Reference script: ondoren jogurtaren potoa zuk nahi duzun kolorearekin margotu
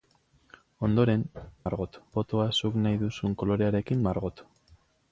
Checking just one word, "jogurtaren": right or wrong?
wrong